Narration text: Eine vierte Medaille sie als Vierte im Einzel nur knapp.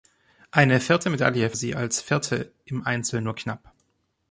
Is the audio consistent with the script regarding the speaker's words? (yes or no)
yes